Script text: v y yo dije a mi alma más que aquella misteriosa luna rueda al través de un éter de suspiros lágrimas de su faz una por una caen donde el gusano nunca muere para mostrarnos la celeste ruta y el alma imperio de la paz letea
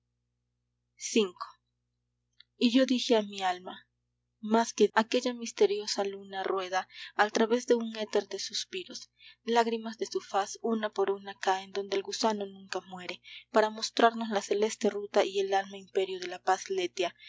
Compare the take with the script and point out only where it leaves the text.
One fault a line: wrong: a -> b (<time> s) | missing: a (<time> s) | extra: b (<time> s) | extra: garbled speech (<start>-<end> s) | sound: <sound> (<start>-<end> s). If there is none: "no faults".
no faults